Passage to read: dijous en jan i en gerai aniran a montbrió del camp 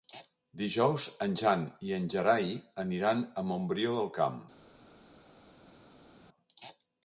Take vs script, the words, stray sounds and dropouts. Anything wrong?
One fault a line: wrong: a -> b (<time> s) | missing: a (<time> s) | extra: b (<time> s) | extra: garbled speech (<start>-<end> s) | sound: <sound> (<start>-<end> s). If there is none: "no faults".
no faults